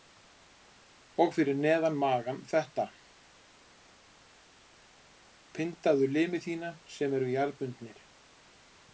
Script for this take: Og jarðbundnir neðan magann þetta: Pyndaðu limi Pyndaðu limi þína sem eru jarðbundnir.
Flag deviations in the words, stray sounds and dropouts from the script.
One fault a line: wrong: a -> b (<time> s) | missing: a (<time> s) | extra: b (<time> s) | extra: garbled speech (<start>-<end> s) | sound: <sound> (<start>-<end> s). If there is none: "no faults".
wrong: jarðbundnir -> fyrir (1.4 s)
missing: Pyndaðu limi (6.4 s)